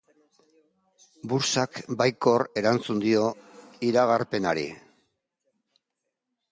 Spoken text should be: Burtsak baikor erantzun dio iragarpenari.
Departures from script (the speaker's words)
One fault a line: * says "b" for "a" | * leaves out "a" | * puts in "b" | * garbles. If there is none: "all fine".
all fine